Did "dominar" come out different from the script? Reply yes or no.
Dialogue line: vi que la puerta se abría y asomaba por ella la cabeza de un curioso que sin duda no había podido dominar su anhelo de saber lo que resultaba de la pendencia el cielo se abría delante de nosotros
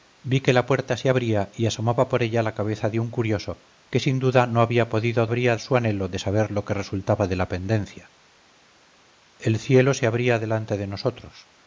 yes